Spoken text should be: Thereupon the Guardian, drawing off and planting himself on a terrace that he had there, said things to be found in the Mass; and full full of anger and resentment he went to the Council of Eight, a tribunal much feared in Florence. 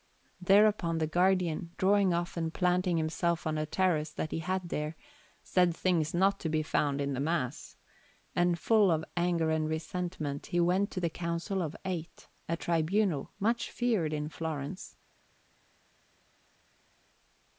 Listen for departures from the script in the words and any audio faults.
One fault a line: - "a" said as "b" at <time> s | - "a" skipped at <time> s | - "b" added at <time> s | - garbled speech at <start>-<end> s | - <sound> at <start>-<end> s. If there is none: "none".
- "not" added at 6.1 s
- "full" skipped at 8.9 s